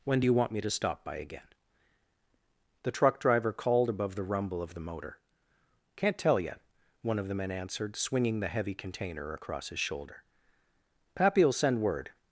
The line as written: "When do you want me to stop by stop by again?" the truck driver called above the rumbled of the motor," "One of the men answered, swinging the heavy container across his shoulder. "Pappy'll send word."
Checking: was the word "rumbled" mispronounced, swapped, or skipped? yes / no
yes